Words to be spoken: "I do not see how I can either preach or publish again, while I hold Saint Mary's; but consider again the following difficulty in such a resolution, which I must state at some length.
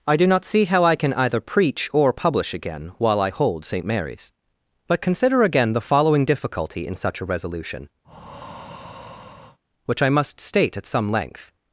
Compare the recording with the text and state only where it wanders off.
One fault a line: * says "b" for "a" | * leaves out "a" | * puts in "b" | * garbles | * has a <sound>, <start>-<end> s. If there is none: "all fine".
* has a breath, 8.0-9.6 s